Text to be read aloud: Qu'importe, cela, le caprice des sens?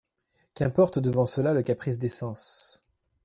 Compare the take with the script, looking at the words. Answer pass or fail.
fail